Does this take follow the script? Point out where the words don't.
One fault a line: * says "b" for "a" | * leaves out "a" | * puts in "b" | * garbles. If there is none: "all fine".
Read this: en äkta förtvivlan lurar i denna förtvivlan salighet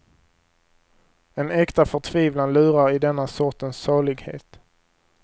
* says "sortens" for "förtvivlan"